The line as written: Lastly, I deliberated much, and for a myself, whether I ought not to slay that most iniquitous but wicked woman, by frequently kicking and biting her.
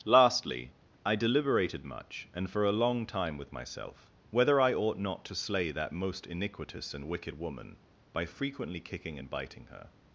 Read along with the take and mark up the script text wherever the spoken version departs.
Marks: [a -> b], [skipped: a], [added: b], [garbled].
Lastly, I deliberated much, and for a [added: long time with] myself, whether I ought not to slay that most iniquitous [but -> and] wicked woman, by frequently kicking and biting her.